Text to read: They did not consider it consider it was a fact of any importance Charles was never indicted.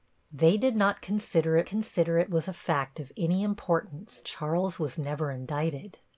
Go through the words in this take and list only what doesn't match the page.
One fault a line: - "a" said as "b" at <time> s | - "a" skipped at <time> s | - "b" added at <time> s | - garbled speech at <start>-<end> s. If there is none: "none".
none